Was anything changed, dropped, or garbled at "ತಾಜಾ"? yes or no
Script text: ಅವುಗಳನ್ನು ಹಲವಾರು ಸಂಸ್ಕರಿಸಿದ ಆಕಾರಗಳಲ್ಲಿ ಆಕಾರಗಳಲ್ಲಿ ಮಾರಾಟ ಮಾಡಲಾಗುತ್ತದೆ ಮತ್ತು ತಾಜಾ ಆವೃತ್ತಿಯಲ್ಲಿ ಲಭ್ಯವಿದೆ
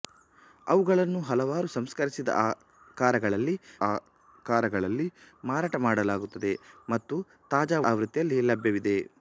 no